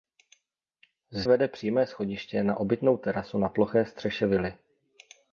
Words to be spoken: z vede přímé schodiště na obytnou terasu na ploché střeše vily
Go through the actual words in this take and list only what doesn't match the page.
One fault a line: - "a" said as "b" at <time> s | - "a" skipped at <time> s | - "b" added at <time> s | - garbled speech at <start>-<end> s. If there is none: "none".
none